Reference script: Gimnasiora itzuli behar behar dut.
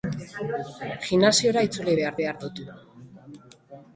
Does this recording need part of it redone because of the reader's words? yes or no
no